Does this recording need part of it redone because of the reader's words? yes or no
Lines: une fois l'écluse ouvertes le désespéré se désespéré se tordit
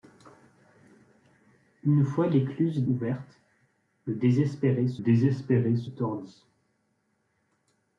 no